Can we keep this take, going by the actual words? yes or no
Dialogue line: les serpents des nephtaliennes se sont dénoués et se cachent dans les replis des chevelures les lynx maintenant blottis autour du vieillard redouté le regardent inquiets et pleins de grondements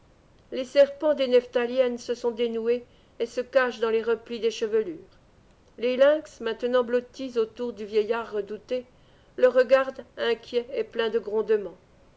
yes